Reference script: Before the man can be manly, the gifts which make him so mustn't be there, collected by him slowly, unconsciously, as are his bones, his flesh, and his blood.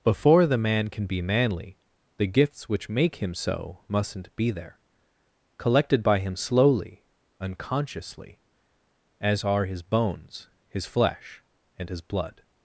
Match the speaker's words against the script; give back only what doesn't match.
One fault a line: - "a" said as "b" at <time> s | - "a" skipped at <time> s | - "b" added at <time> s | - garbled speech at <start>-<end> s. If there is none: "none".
none